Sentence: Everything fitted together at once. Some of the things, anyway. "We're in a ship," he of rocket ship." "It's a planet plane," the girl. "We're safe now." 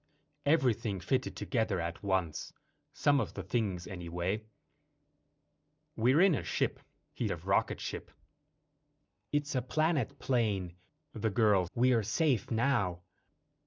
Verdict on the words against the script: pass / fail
pass